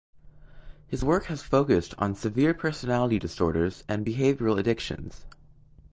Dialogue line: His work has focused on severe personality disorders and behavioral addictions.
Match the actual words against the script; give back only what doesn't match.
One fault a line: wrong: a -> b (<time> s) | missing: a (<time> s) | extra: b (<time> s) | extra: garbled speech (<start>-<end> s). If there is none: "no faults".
no faults